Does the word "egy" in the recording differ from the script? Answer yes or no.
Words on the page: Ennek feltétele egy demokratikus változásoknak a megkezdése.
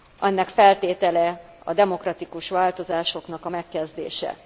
yes